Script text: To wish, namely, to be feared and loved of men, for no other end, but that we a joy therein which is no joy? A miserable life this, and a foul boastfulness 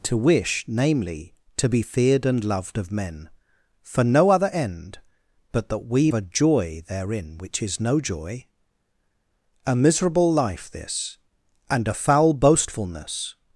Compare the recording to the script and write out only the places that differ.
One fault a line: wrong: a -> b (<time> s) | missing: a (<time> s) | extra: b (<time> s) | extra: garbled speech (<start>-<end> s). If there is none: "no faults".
no faults